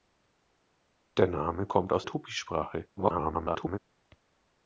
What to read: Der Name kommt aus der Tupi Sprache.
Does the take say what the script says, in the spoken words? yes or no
no